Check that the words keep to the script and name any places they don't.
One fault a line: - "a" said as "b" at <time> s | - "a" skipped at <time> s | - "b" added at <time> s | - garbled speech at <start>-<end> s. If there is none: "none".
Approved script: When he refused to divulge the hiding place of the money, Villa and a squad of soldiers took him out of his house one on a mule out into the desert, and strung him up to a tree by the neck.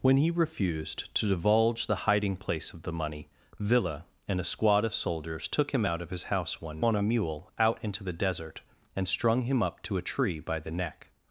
none